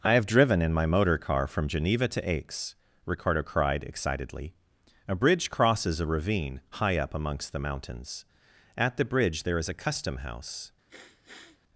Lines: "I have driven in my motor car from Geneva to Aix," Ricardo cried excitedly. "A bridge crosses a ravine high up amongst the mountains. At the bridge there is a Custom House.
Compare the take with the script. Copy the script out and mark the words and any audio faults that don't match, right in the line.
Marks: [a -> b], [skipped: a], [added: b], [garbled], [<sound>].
"I have driven in my motor car from Geneva to Aix," Ricardo cried excitedly. "A bridge crosses a ravine high up amongst the mountains. At the bridge there is a Custom House. [sniff]